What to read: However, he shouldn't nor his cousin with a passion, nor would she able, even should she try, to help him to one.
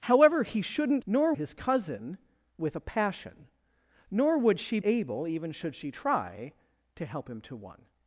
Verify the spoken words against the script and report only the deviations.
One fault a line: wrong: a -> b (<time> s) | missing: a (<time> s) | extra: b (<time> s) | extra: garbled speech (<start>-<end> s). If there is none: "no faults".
no faults